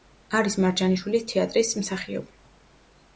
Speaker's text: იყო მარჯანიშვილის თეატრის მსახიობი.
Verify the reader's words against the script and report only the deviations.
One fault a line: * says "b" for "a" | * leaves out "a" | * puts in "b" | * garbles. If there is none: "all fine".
* says "არის" for "იყო"